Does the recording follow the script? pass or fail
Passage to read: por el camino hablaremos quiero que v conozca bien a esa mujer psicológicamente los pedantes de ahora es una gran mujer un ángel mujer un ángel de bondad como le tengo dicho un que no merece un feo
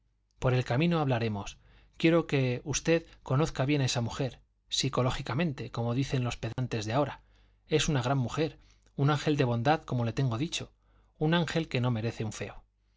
fail